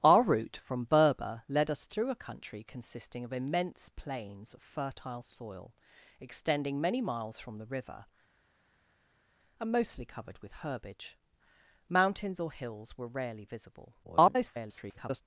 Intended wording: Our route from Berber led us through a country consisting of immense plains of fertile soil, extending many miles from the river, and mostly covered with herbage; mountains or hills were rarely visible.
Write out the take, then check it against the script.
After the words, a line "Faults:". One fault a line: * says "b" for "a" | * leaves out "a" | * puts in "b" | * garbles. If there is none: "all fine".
Our route from Berber led us through a country consisting of immense plains of fertile soil, extending many miles from the river, and mostly covered with herbage; mountains or hills were rarely visible. [garbled]
Faults:
* garbles